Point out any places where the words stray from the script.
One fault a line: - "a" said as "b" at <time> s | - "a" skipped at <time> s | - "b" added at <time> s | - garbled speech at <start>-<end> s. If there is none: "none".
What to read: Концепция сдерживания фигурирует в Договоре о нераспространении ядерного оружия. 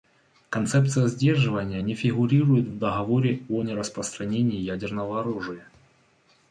- "не" added at 1.8 s